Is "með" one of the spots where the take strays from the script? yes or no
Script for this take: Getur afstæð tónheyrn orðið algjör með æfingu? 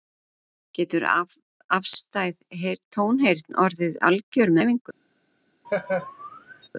yes